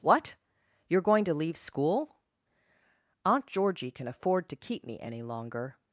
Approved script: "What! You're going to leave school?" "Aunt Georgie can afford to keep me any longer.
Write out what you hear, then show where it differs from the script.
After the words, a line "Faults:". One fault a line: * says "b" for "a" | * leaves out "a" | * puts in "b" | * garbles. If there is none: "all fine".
"What! You're going to leave school?" "Aunt Georgie can afford to keep me any longer.
Faults:
all fine